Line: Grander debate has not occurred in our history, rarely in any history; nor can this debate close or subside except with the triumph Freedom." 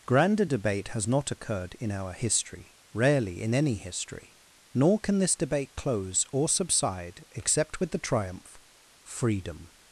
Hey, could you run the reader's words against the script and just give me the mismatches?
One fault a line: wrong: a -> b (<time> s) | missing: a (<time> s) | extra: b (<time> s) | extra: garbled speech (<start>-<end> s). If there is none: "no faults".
no faults